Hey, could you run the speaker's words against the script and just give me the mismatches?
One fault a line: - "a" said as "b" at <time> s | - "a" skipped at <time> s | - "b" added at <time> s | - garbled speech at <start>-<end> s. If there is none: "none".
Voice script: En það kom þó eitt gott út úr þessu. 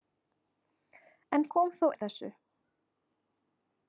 - "það" skipped at 1.4 s
- "eitt gott út" skipped at 1.9 s